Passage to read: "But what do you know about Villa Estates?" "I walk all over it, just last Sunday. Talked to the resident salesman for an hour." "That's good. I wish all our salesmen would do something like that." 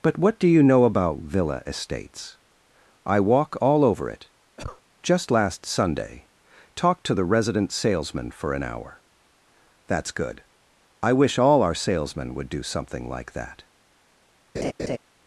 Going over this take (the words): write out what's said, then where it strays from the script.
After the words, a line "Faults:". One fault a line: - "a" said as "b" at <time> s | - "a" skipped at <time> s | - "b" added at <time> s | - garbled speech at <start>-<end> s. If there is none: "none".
"But what do you know about Villa Estates?" "I walk all over it, just last Sunday. Talked to the resident salesman for an hour." "That's good. I wish all our salesmen would do something like that."
Faults:
none